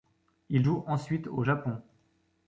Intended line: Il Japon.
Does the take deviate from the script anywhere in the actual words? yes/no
yes